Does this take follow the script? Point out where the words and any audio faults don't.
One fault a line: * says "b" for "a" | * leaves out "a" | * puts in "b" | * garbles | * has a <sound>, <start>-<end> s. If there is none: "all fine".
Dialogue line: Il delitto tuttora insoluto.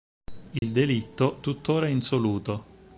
* has a dropout, 0.6-0.6 s